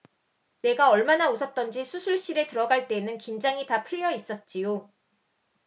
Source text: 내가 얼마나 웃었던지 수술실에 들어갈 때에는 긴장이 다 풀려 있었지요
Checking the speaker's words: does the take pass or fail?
pass